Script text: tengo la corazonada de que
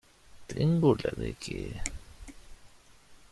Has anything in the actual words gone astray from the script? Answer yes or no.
yes